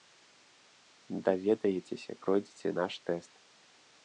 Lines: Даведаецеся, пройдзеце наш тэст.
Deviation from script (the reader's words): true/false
false